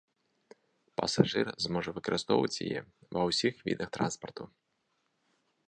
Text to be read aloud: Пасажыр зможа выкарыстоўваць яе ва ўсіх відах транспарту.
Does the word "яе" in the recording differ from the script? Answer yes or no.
no